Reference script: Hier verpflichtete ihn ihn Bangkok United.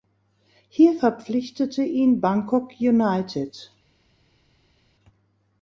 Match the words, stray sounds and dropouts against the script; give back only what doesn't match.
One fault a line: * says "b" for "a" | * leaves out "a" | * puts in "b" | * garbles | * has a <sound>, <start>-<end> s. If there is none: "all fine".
* leaves out "ihn"